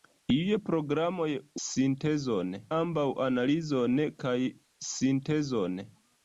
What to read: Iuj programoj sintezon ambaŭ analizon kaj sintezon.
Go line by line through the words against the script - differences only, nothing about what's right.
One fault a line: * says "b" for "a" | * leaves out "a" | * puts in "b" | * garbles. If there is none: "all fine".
all fine